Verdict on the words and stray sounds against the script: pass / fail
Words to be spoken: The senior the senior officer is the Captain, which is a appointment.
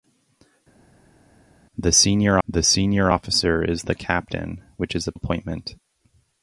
pass